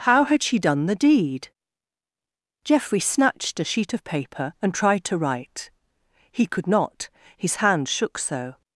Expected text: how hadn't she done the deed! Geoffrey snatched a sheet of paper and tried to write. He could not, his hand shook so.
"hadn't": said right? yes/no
no